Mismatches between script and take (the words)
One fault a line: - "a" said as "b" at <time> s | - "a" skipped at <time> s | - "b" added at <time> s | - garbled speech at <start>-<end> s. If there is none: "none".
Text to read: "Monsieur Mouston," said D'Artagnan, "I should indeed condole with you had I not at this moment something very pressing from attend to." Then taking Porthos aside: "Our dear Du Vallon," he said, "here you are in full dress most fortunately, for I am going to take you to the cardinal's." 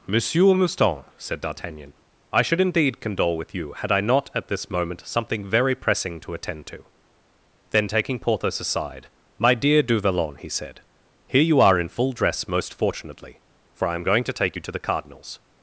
- "from" said as "to" at 6.2 s
- "Our" said as "My" at 9.4 s